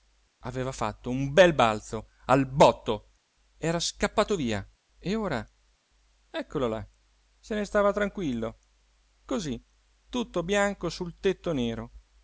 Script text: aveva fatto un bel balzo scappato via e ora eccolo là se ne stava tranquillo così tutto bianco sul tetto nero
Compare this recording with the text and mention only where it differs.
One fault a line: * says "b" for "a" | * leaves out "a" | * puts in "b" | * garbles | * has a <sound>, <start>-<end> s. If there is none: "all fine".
* puts in "al botto era"